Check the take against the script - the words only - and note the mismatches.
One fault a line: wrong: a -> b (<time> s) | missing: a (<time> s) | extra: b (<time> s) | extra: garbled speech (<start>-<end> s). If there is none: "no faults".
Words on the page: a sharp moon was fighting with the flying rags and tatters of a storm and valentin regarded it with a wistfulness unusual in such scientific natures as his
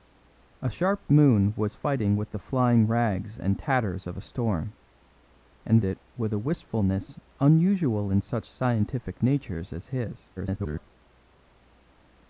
missing: valentin regarded (5.8 s)
extra: garbled speech (10.4-10.9 s)